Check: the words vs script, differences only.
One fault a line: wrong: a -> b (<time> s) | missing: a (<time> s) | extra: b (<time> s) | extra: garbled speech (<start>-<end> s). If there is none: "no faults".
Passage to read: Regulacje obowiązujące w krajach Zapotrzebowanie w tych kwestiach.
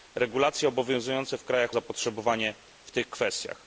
no faults